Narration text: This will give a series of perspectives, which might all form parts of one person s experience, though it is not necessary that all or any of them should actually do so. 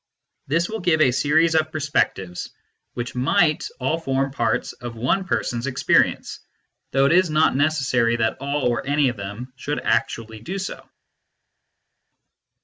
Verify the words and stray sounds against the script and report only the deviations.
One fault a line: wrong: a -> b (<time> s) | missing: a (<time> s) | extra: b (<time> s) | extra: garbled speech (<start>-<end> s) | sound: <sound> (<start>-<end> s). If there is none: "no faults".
no faults